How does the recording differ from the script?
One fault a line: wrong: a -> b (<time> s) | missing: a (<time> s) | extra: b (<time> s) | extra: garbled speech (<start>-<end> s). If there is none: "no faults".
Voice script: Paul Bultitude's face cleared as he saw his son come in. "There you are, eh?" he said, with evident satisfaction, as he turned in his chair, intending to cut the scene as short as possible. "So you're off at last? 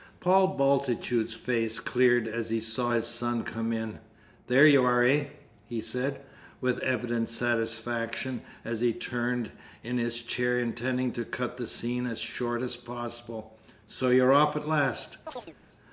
no faults